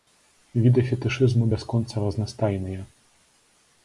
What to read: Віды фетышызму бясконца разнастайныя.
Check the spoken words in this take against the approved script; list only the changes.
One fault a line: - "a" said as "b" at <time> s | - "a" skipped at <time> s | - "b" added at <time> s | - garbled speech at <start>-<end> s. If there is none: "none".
none